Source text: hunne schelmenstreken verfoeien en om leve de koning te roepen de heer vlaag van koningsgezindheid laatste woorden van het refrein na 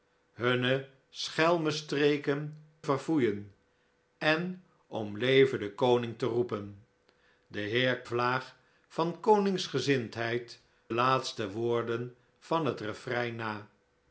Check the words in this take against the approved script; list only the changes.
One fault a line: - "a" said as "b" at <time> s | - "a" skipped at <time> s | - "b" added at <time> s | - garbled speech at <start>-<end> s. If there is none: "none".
none